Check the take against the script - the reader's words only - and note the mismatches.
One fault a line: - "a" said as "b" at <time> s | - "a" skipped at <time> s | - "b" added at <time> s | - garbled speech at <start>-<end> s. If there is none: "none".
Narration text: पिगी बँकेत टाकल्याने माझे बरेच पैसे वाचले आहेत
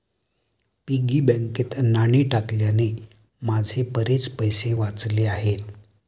- "नाणी" added at 1.8 s